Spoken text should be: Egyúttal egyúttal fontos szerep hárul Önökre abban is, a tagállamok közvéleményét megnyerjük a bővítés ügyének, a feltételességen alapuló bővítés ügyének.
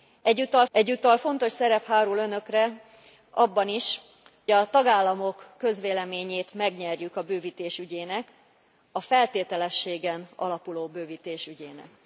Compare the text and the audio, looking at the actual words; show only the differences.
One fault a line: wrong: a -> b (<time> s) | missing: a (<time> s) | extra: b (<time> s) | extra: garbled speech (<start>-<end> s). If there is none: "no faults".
no faults